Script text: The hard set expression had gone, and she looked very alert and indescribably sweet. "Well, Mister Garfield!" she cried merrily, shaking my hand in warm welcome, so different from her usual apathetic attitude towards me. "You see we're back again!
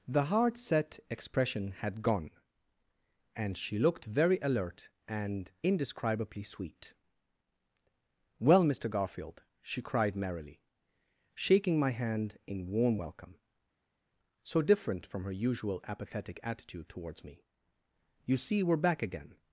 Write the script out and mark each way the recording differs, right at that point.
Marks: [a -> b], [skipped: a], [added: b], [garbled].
The hard set expression had gone, and she looked very alert and indescribably sweet. "Well, Mister Garfield!" she cried merrily, shaking my hand in warm welcome, so different from her usual apathetic attitude towards me. "You see we're back again!